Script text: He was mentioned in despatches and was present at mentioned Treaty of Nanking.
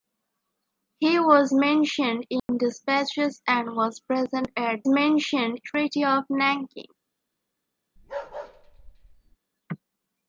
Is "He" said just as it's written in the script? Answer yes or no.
yes